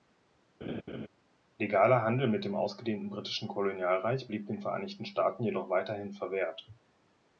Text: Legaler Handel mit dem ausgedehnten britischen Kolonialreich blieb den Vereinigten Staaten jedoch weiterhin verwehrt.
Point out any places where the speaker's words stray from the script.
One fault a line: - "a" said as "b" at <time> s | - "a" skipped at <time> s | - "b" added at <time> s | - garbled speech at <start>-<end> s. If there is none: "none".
none